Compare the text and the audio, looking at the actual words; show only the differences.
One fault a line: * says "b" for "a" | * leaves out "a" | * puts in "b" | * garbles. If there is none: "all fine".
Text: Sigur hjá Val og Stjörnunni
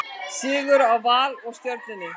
all fine